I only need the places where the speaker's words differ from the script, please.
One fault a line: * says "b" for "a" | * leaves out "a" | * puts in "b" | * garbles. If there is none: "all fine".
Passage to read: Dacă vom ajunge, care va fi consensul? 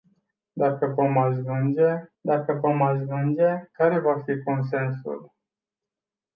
* puts in "dacă vom ajunge"